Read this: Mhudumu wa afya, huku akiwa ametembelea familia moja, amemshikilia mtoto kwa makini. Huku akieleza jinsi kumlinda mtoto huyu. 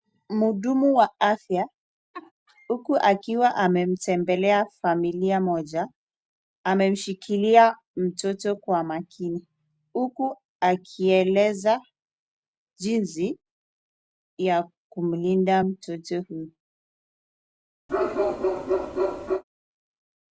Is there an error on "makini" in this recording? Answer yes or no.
no